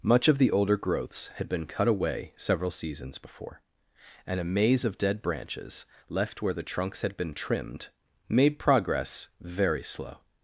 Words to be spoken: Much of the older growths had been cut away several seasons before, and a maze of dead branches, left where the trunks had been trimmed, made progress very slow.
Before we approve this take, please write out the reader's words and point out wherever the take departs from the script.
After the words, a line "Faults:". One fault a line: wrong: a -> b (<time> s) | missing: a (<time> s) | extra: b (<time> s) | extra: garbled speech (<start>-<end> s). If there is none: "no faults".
Much of the older growths had been cut away several seasons before, and a maze of dead branches, left where the trunks had been trimmed, made progress very slow.
Faults:
no faults